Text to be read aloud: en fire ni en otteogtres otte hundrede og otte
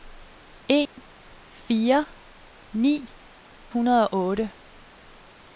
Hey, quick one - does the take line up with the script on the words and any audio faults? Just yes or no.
no